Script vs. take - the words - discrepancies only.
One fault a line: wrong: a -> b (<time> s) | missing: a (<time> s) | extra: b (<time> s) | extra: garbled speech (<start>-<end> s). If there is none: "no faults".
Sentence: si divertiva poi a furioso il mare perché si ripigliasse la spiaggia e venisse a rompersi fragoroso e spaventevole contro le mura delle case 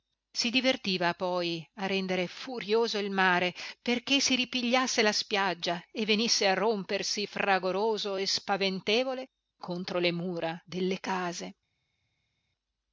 extra: rendere (1.8 s)